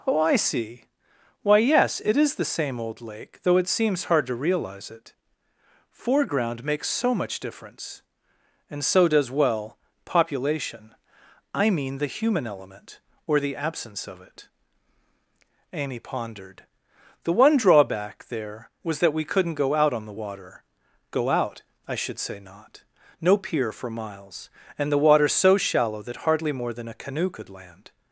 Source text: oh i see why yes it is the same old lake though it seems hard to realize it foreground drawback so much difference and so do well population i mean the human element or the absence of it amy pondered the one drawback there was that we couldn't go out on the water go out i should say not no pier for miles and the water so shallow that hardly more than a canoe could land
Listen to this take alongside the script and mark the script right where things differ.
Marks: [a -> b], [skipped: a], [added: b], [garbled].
oh i see why yes it is the same old lake though it seems hard to realize it foreground [drawback -> makes] so much difference and so [do -> does] well population i mean the human element or the absence of it amy pondered the one drawback there was that we couldn't go out on the water go out i should say not no pier for miles and the water so shallow that hardly more than a canoe could land